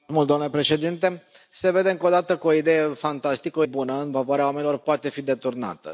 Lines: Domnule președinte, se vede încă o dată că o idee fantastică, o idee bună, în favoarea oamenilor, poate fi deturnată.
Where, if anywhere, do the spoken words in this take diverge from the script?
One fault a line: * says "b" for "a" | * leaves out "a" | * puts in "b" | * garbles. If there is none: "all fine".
* leaves out "idee"